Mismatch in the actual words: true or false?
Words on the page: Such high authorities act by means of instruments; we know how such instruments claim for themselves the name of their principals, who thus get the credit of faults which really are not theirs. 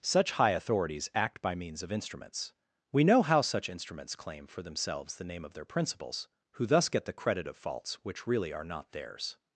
false